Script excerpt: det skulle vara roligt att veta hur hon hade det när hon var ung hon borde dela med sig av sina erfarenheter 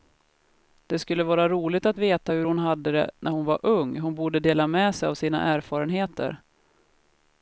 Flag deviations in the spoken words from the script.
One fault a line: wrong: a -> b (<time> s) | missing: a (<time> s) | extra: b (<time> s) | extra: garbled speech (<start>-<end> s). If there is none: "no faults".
no faults